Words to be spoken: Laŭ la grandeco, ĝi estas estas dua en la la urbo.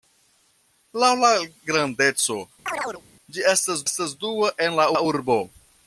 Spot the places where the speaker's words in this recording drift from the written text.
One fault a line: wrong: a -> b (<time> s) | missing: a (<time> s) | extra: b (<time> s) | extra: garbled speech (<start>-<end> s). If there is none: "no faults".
no faults